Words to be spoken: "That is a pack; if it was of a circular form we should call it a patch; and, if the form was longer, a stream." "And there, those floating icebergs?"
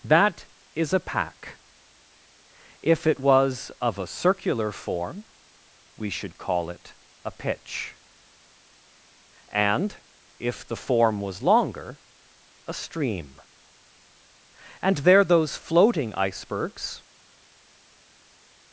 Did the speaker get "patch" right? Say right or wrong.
wrong